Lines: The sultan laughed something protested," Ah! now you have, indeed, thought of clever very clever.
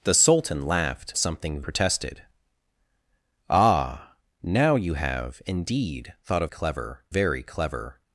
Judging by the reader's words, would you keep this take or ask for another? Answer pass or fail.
pass